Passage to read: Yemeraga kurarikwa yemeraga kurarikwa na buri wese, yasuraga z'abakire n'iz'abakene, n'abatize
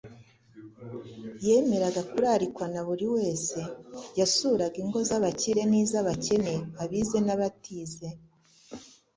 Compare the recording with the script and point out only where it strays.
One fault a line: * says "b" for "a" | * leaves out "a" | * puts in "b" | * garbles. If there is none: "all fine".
* leaves out "yemeraga kurarikwa"
* puts in "ingo"
* puts in "abize"